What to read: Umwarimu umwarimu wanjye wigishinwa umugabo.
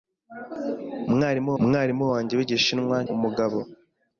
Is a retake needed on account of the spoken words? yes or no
no